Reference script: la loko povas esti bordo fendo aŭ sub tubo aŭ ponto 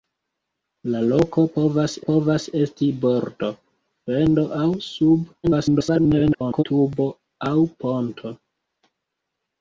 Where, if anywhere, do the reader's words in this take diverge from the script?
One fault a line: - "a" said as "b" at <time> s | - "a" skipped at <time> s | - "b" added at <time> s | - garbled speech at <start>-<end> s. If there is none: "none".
- "povas" added at 2.1 s
- garbled speech at 5.4-6.6 s